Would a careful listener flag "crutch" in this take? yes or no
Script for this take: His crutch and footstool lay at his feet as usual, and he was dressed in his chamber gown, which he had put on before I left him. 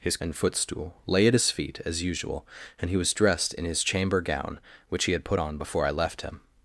yes